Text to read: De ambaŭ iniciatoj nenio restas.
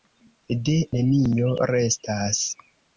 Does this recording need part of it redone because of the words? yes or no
yes